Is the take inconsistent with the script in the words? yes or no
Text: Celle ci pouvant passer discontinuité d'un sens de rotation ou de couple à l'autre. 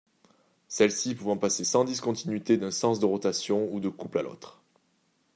yes